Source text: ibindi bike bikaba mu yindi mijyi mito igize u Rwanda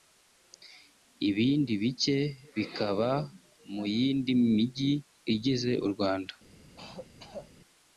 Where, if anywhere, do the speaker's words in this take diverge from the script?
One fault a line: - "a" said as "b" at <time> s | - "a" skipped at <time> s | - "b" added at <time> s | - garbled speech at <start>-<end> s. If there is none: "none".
- "mito" skipped at 4.9 s